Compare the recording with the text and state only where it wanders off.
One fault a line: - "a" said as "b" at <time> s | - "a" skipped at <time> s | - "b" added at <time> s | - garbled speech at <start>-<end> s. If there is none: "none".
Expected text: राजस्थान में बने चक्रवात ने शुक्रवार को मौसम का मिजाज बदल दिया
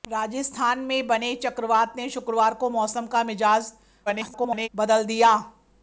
- garbled speech at 4.1-4.7 s